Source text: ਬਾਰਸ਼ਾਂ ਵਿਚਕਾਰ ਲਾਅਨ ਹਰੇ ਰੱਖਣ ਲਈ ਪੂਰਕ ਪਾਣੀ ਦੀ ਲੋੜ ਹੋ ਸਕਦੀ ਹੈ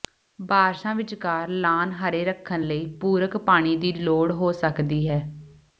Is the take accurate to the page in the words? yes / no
yes